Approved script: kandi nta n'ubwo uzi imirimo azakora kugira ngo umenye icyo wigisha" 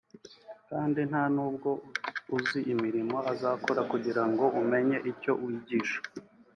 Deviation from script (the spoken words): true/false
false